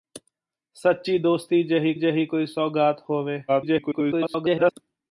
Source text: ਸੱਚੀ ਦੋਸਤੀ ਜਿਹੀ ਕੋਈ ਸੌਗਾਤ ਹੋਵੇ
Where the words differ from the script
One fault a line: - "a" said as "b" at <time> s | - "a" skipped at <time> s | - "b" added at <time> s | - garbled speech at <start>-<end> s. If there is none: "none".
- "ਜਿਹੀ" added at 2.0 s
- garbled speech at 3.5-4.7 s